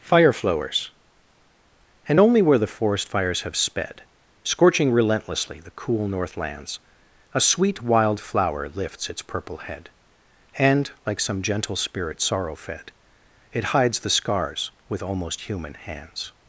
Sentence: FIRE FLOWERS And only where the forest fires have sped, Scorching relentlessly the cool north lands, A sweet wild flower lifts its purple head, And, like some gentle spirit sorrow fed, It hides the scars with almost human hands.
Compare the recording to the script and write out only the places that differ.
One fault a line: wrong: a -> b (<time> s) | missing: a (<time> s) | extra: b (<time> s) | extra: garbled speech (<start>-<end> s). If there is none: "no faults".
no faults